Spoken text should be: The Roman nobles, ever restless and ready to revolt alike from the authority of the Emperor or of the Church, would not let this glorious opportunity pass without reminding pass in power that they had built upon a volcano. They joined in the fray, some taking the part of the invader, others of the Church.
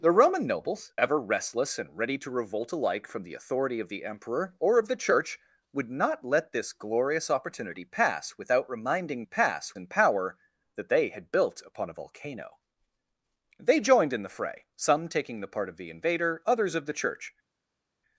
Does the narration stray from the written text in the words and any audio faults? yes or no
no